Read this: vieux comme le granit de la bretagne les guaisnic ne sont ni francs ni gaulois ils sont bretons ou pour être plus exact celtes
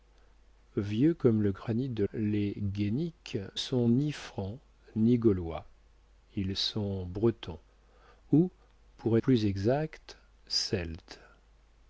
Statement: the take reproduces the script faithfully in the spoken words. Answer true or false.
false